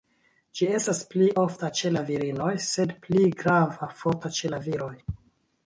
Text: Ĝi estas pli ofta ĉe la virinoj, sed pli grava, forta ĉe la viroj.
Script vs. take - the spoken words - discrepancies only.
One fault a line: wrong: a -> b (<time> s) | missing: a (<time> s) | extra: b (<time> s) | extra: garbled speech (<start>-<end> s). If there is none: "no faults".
no faults